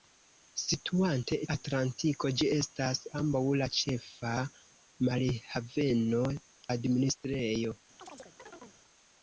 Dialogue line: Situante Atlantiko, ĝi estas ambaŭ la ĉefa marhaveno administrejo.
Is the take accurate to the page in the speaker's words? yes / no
yes